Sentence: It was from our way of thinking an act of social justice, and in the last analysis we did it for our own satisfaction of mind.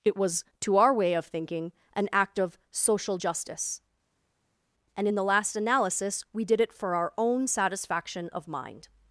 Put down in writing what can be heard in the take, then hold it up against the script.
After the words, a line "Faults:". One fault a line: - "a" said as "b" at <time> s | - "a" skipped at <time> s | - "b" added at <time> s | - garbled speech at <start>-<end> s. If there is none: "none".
It was to our way of thinking an act of social justice, and in the last analysis we did it for our own satisfaction of mind.
Faults:
- "from" said as "to" at 0.6 s